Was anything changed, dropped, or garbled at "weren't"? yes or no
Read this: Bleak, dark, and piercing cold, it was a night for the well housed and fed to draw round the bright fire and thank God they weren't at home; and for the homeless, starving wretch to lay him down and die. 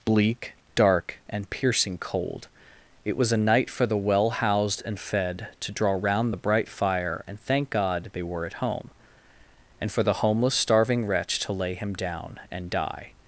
yes